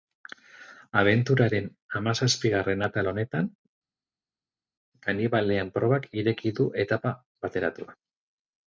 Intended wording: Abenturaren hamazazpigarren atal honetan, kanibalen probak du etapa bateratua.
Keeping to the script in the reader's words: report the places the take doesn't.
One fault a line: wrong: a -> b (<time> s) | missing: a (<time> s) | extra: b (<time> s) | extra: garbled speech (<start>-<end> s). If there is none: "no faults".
extra: ireki (6.2 s)